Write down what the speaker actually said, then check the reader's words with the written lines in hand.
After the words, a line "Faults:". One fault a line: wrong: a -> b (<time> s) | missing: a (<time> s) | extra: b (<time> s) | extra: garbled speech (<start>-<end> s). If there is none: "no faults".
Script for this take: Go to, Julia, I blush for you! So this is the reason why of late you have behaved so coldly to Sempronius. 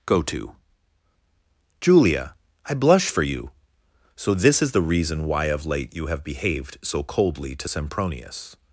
Go to, Julia, I blush for you! So this is the reason why of late you have behaved so coldly to Sempronius.
Faults:
no faults